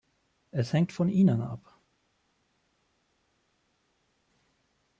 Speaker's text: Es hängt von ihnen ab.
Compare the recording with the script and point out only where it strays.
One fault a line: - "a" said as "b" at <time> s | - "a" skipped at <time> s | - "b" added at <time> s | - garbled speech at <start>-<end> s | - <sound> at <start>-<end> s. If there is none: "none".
none